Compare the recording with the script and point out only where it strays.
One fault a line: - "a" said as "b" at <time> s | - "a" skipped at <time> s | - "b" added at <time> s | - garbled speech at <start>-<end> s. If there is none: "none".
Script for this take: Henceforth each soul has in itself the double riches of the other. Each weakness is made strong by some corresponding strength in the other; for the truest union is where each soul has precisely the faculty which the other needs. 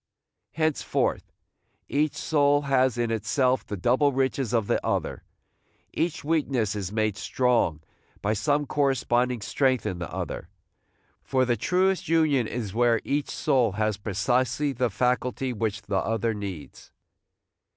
none